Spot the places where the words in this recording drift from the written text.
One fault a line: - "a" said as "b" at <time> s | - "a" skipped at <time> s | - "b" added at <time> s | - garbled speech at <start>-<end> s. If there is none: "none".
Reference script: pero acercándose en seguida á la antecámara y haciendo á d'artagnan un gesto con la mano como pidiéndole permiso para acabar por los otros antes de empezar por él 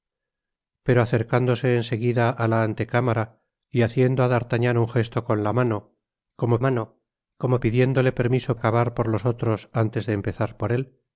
- "mano como" added at 6.7 s
- "para" skipped at 8.5 s